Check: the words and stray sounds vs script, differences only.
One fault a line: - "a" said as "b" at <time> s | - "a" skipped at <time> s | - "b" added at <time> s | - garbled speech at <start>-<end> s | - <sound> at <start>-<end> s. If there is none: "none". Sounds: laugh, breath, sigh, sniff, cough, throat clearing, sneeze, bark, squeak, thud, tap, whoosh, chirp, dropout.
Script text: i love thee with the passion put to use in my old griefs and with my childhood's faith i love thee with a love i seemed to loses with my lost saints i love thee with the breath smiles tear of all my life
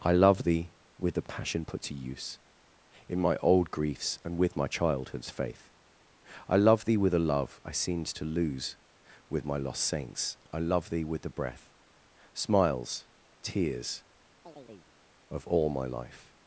- "loses" said as "lose" at 8.2 s
- "tear" said as "tears" at 13.4 s
- chirp at 14.4-14.9 s